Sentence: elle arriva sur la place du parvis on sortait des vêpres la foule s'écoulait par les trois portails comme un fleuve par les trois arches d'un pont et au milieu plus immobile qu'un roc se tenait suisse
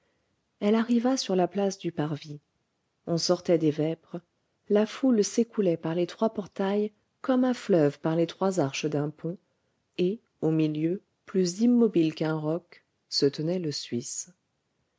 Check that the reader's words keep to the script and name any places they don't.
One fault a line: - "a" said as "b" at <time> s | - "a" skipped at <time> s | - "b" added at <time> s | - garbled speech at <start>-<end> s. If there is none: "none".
- "le" added at 13.6 s